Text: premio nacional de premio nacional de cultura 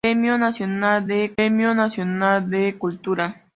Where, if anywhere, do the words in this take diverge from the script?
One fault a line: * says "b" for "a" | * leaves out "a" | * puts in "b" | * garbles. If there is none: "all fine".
all fine